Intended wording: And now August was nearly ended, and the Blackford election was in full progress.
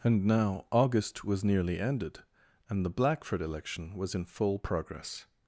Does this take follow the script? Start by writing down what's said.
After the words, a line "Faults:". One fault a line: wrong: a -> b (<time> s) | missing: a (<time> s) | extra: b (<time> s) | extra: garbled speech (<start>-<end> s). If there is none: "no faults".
And now August was nearly ended, and the Blackford election was in full progress.
Faults:
no faults